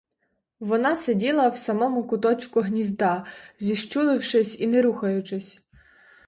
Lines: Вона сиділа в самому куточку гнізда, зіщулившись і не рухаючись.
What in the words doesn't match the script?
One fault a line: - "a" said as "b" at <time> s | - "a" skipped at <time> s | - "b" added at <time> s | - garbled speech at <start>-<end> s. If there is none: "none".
none